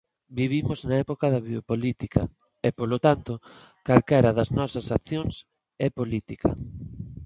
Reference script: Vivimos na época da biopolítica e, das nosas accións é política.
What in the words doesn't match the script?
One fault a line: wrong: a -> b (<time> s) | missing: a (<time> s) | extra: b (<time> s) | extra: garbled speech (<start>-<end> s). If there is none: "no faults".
extra: polo tanto calquera (2.8 s)